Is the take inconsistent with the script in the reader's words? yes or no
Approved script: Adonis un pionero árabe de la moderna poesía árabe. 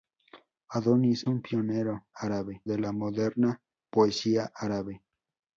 no